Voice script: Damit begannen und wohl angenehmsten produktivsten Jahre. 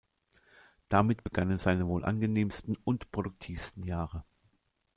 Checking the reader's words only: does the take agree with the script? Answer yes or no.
no